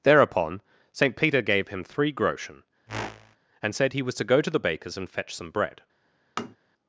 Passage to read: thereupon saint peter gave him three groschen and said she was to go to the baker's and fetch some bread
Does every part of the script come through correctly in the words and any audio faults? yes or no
no